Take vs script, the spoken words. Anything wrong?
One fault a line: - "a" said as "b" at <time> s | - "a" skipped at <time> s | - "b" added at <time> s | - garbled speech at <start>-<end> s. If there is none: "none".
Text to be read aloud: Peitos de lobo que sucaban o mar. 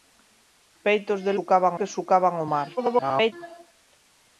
- "lobo" said as "sucaban" at 1.4 s
- garbled speech at 2.8-3.3 s